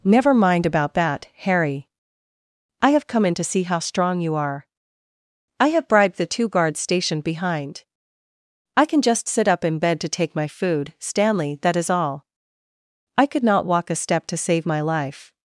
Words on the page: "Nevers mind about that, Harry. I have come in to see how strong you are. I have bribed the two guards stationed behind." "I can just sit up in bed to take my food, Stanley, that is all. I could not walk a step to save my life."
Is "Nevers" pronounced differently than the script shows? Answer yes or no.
yes